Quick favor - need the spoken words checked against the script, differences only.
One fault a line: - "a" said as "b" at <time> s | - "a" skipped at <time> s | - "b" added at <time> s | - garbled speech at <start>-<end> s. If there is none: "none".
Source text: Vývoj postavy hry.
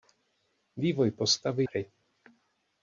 none